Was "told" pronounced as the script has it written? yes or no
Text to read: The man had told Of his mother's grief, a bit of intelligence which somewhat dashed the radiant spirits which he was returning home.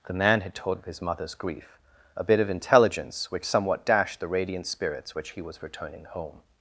yes